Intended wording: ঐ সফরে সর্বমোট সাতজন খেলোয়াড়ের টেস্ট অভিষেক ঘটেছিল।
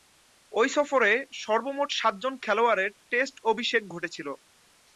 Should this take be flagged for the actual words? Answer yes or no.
no